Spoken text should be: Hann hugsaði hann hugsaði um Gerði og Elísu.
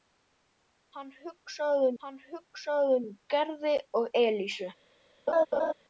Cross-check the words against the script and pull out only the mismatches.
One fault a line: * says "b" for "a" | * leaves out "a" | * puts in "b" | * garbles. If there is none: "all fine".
all fine